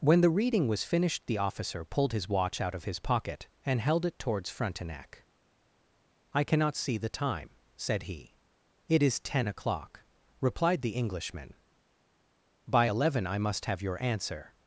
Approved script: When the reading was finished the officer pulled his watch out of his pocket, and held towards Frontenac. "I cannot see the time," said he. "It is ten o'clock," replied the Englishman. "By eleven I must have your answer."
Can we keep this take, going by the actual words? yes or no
no